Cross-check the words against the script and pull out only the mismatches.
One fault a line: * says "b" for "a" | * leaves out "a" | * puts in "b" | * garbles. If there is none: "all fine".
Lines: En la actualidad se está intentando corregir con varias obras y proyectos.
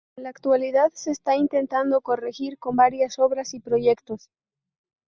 all fine